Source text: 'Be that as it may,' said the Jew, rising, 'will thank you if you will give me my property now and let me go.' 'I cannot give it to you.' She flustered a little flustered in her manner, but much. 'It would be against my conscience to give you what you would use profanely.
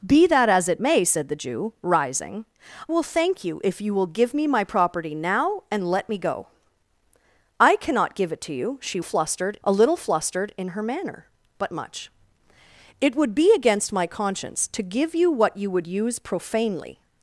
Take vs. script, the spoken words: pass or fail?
pass